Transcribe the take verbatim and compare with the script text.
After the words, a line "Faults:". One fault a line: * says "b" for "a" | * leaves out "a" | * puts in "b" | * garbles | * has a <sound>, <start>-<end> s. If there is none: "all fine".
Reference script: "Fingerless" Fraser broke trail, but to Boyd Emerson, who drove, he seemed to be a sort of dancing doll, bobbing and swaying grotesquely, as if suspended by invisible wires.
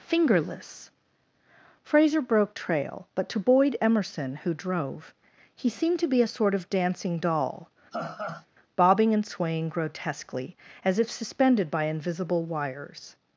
"Fingerless" Fraser broke trail, but to Boyd Emerson, who drove, he seemed to be a sort of dancing doll, bobbing and swaying grotesquely, as if suspended by invisible wires.
Faults:
* has a laugh, 7.9-8.5 s